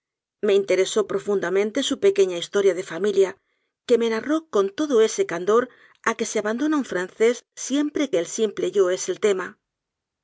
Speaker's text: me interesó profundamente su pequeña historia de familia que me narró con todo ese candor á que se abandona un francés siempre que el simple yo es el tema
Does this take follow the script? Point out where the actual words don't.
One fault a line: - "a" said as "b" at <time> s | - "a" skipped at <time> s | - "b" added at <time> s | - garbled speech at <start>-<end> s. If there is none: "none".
none